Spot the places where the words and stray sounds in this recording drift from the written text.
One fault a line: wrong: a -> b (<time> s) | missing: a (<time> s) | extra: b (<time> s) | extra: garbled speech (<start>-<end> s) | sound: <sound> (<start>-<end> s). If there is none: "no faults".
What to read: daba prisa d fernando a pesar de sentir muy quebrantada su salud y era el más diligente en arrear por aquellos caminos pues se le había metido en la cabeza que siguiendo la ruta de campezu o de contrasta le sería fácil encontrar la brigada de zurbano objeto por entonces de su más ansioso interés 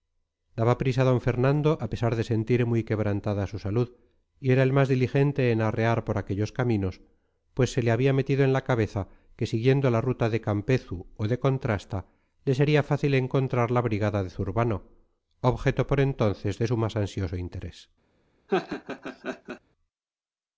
sound: laugh (18.5-19.6 s)